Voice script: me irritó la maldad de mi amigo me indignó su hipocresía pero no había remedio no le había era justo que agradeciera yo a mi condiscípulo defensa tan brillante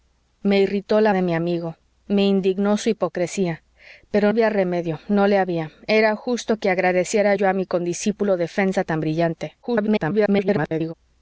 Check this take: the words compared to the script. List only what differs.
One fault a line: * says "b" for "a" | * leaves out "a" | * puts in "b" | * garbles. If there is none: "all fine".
* leaves out "maldad"
* leaves out "no"
* garbles